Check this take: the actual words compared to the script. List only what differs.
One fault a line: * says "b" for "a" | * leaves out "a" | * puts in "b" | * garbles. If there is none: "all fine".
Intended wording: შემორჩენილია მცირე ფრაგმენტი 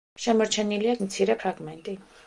all fine